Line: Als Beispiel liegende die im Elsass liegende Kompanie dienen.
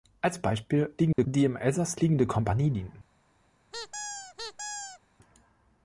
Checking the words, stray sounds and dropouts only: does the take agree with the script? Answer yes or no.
no